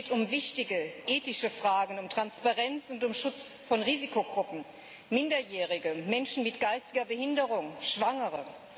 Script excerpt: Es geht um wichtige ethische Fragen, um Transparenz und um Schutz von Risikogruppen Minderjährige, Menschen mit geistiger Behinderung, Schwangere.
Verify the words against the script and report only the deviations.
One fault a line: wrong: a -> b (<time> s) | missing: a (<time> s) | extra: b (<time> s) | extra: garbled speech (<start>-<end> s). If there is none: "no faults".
no faults